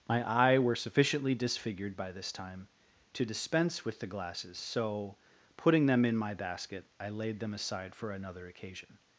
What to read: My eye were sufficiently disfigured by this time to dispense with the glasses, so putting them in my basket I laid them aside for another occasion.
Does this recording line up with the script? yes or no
yes